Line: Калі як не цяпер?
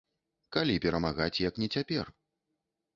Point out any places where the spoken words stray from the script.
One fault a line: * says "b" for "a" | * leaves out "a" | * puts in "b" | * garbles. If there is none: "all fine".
* puts in "перамагаць"